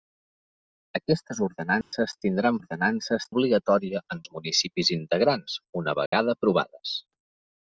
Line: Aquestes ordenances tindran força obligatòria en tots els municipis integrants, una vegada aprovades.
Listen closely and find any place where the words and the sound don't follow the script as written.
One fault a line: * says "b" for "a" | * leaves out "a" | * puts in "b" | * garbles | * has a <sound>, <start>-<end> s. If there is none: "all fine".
* has a dropout, 1.8-1.9 s
* says "ordenances" for "força"
* leaves out "tots"
* has a dropout, 6.1-6.1 s